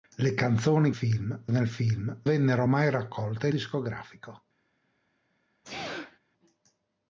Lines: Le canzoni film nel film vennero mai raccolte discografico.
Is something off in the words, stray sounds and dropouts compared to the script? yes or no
yes